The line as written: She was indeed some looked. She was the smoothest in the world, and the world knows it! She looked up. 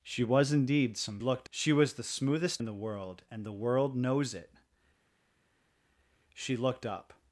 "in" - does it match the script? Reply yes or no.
yes